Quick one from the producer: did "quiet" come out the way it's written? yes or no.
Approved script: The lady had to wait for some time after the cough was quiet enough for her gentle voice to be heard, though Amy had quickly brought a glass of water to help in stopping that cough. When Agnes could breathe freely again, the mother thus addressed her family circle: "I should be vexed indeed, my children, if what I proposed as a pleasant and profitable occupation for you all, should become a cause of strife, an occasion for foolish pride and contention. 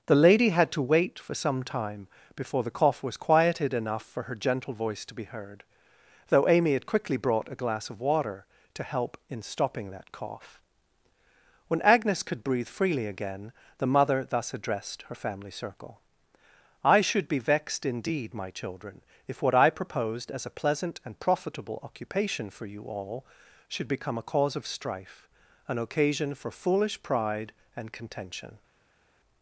no